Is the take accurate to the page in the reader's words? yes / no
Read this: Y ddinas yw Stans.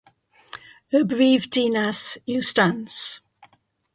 no